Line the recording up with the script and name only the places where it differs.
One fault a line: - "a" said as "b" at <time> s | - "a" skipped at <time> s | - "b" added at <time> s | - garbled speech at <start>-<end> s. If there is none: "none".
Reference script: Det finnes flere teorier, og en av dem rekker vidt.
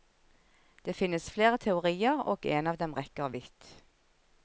none